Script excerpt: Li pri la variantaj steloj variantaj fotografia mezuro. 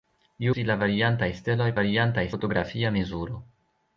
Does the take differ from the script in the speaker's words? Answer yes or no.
no